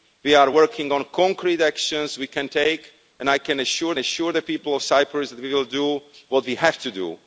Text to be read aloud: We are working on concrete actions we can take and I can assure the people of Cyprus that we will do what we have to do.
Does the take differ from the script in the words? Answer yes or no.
yes